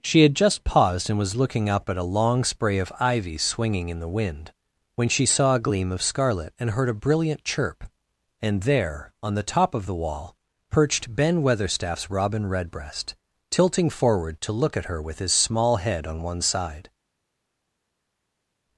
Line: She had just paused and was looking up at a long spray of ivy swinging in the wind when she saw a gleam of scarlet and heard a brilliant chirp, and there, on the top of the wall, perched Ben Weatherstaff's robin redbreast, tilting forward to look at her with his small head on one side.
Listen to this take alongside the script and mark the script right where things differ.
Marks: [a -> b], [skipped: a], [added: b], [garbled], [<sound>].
She had just paused and was looking up at a long spray of ivy swinging in the wind when she saw a gleam of scarlet and heard a brilliant chirp, and there, on the top of the wall, perched Ben Weatherstaff's robin redbreast, tilting forward to look at her with his small head on one side.